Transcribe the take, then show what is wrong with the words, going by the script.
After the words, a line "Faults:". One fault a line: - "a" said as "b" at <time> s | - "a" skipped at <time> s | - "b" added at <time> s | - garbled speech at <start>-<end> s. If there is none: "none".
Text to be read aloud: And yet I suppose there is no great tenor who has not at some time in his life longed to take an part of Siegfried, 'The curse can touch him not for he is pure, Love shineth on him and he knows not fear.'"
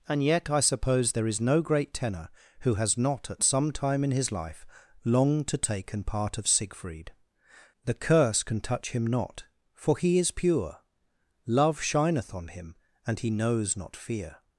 And yet I suppose there is no great tenor who has not at some time in his life longed to take an part of Siegfried, 'The curse can touch him not for he is pure, Love shineth on him and he knows not fear.'"
Faults:
none